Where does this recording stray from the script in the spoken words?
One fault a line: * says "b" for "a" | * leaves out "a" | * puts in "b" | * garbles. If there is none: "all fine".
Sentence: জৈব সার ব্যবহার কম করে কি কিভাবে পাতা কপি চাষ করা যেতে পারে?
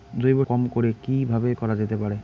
* leaves out "সার ব্যবহার"
* leaves out "পাতা কপি চাষ"